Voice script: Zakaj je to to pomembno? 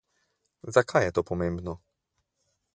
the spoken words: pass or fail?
fail